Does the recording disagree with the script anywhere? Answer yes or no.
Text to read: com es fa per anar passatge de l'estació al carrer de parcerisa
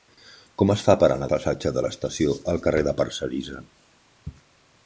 no